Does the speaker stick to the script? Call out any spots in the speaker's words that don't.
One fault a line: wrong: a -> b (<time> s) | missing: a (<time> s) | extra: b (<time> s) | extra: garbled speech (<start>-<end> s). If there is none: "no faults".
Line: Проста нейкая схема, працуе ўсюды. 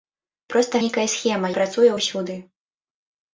no faults